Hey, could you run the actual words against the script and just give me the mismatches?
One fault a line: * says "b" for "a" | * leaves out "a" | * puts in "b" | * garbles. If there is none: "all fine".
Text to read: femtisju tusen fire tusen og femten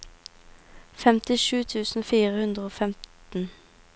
* says "hundre" for "tusen"